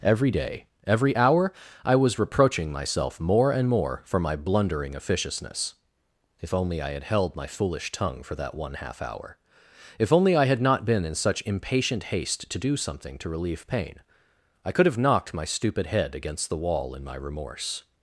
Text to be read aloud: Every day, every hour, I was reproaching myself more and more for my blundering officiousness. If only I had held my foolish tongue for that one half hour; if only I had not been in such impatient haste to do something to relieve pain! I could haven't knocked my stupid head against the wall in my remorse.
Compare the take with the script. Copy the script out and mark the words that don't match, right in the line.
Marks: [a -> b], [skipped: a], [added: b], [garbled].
Every day, every hour, I was reproaching myself more and more for my blundering officiousness. If only I had held my foolish tongue for that one half hour; if only I had not been in such impatient haste to do something to relieve pain! I could [haven't -> have] knocked my stupid head against the wall in my remorse.